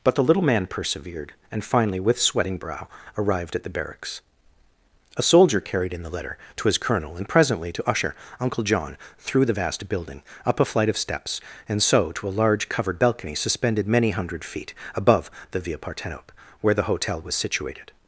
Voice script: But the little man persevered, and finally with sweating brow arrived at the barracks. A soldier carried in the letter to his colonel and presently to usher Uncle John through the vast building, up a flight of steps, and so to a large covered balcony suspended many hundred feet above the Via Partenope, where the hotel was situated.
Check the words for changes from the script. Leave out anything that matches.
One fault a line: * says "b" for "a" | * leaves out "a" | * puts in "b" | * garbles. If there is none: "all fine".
all fine